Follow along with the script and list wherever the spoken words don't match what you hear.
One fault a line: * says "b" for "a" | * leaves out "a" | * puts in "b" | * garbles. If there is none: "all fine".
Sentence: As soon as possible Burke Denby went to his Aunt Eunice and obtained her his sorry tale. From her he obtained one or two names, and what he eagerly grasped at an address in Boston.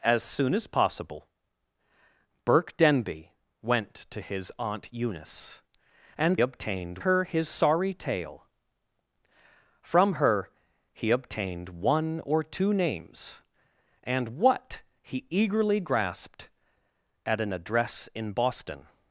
all fine